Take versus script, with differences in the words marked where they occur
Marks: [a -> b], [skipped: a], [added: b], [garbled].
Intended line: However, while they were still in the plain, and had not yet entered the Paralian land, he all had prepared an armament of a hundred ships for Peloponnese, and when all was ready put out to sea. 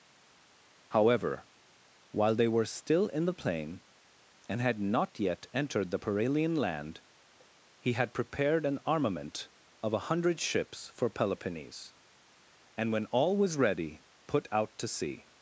However, while they were still in the plain, and had not yet entered the Paralian land, he [skipped: all] had prepared an armament of a hundred ships for Peloponnese, and when all was ready put out to sea.